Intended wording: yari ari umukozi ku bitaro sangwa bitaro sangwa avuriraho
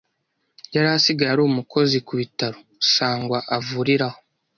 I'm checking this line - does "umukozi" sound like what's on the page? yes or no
yes